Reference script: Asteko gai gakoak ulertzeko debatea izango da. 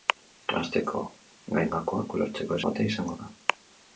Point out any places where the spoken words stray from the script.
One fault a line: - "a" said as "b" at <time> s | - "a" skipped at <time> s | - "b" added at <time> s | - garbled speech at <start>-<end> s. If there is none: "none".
none